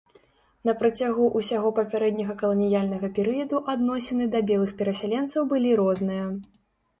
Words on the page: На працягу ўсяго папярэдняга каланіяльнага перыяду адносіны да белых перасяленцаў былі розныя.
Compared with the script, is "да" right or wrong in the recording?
right